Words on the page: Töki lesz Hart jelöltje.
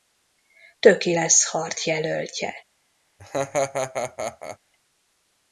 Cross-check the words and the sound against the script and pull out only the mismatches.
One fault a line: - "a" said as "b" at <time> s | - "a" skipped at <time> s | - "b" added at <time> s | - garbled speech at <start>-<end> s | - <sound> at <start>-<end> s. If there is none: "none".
- laugh at 3.2-4.6 s